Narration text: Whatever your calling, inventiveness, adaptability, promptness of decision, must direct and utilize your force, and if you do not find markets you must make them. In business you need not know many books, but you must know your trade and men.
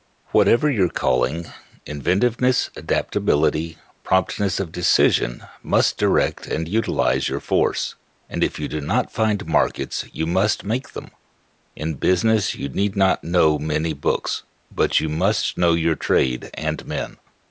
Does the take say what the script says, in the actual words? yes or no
yes